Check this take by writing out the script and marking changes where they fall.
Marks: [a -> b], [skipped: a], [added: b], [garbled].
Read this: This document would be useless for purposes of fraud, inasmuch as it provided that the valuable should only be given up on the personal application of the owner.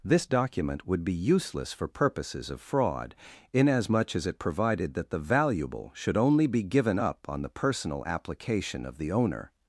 This document would be useless for purposes of fraud, inasmuch as it provided that the valuable should only be given up on the personal application of the owner.